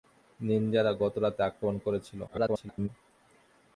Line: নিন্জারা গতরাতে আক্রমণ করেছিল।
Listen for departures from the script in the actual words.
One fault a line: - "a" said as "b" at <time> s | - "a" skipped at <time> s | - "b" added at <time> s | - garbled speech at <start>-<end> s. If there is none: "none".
- garbled speech at 2.3-2.9 s